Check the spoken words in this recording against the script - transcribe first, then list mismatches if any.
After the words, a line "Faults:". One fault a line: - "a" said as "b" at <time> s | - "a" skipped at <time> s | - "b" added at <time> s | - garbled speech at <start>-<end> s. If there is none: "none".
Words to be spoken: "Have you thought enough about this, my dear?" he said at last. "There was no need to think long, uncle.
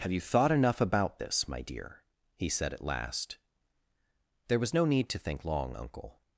"Have you thought enough about this, my dear?" he said at last. "There was no need to think long, uncle.
Faults:
none